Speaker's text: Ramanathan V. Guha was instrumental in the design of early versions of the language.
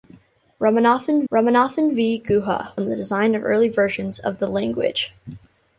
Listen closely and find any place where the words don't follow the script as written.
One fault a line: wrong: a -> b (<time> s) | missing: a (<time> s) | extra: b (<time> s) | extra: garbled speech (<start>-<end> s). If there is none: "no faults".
extra: ramanathan (1.3 s)
missing: was instrumental (2.7 s)